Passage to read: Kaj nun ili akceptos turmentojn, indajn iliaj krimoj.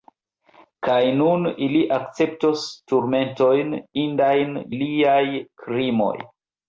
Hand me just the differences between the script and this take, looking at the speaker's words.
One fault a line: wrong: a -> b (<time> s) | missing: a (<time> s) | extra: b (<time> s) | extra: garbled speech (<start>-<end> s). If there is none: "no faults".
no faults